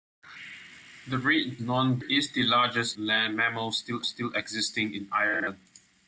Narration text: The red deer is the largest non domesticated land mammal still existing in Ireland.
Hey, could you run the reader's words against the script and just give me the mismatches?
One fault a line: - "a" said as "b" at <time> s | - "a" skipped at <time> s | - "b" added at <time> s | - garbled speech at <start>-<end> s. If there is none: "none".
- "deer" said as "non" at 1.6 s
- "non domesticated" skipped at 2.9 s
- "still" added at 4.0 s